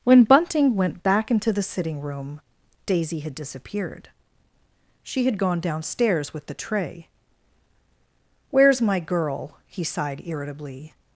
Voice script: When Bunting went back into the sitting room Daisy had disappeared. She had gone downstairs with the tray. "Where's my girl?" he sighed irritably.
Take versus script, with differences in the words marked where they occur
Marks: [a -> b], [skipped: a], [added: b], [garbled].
When Bunting went back into the sitting room Daisy had disappeared. She had gone downstairs with the tray. "Where's my girl?" he sighed irritably.